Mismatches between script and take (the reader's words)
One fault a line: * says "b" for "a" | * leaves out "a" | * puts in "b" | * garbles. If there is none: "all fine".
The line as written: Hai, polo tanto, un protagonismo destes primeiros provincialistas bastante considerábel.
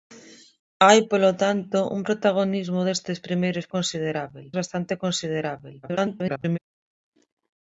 * says "considerábel" for "provincialistas"
* garbles